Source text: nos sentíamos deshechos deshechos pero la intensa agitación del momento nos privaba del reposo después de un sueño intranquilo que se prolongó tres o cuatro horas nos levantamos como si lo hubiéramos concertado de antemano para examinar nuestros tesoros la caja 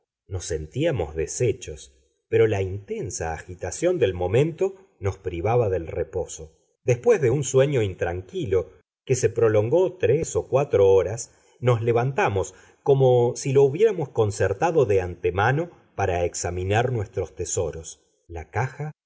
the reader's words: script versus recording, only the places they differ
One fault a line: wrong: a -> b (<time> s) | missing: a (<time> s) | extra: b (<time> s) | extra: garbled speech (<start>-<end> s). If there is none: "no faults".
missing: deshechos (1.9 s)